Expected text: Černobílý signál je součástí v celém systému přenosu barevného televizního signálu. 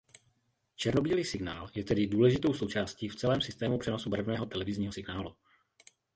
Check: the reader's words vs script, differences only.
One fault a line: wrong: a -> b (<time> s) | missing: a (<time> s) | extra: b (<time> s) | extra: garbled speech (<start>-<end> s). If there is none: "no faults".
extra: tedy důležitou (1.8 s)